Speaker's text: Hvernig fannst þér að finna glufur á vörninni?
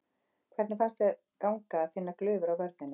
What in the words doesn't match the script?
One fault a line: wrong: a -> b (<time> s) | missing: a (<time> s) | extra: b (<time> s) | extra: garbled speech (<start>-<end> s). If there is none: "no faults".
extra: ganga (1.5 s)